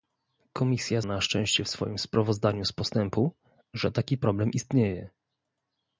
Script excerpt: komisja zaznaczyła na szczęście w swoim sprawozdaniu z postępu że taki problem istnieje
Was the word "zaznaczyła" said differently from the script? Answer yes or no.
yes